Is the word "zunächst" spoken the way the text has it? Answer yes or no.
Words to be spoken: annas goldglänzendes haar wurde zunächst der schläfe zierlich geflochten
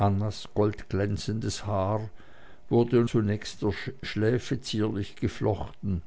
yes